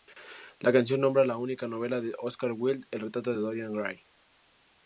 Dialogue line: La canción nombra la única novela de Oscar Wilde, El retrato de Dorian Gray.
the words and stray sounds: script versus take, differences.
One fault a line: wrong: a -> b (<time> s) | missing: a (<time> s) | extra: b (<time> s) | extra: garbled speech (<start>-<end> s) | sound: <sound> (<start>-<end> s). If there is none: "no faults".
no faults